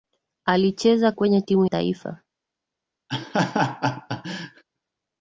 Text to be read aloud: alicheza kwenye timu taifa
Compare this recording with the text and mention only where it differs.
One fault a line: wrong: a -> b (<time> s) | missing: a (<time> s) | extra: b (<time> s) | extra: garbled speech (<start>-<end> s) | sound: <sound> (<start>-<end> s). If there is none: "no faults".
sound: laugh (3.1-4.6 s)